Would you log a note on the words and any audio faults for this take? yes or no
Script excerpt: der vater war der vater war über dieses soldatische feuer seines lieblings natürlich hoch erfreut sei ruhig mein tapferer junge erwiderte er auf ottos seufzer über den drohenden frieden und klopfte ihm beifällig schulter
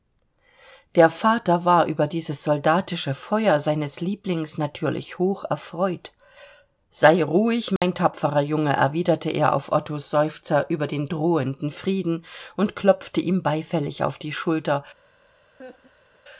yes